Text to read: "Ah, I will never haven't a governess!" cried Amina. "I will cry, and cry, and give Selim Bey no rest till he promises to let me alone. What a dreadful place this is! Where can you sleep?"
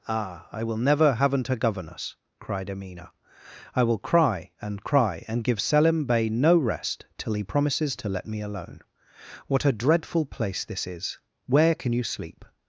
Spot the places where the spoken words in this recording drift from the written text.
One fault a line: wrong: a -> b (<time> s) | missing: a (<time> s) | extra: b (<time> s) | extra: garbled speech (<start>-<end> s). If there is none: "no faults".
no faults